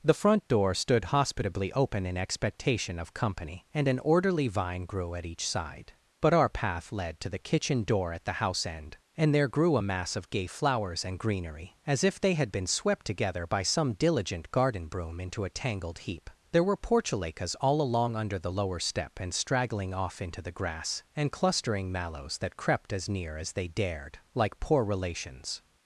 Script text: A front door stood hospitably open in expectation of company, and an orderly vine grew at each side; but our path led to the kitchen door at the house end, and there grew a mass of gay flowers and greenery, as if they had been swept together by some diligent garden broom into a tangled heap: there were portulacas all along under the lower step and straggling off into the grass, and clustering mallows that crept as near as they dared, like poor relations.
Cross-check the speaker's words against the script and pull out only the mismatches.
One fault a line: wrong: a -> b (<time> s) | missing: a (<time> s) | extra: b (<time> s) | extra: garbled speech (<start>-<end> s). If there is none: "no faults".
wrong: A -> The (0.0 s)